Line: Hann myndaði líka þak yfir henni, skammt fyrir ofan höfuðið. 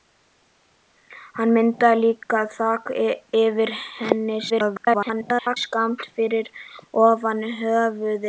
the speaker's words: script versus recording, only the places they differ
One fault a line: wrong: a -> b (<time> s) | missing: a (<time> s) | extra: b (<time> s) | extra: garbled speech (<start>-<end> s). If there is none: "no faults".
extra: garbled speech (4.5-5.6 s)